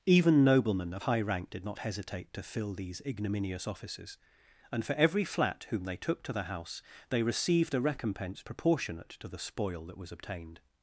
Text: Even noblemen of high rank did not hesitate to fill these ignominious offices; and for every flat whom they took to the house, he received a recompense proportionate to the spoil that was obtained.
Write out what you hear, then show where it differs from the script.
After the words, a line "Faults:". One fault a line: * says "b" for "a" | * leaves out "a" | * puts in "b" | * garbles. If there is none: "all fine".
Even noblemen of high rank did not hesitate to fill these ignominious offices; and for every flat whom they took to the house, they received a recompense proportionate to the spoil that was obtained.
Faults:
* says "they" for "he"